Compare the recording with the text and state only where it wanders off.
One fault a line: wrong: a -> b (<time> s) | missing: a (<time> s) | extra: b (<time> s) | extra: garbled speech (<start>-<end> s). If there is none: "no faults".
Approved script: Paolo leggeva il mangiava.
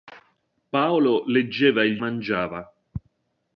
no faults